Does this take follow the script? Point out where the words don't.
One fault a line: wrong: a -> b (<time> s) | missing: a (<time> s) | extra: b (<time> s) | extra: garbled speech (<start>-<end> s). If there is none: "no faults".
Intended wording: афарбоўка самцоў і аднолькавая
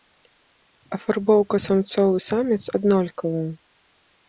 extra: саміц (2.3 s)